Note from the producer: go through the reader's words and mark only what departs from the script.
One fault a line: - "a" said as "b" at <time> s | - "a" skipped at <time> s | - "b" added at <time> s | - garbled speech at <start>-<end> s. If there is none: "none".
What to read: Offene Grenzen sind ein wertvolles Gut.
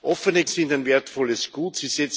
- "Grenzen" skipped at 0.5 s